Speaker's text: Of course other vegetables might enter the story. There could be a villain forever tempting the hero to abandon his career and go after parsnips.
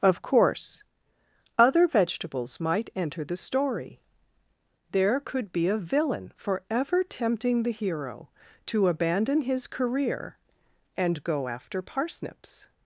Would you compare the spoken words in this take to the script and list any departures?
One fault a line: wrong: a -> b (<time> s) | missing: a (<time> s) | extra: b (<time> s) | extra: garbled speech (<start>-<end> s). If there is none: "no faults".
no faults